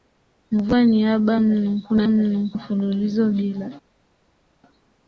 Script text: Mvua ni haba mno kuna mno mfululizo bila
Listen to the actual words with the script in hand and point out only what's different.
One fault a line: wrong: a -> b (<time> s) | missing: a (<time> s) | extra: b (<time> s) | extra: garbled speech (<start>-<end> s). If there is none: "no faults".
no faults